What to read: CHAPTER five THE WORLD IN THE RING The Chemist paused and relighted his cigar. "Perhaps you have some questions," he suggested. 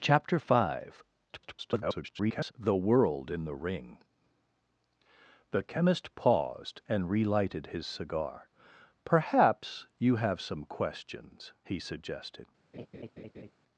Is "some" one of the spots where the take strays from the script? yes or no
no